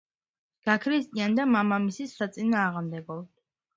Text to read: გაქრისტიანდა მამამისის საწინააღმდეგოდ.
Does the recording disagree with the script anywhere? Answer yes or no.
no